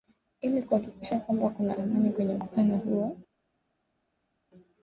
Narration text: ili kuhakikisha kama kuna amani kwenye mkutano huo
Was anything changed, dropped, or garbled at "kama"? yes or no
yes